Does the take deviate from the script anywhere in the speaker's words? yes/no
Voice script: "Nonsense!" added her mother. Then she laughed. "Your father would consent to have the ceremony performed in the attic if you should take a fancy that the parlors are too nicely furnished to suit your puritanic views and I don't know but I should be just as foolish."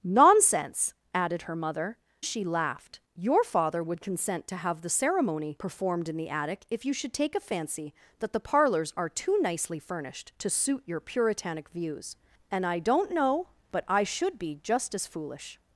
yes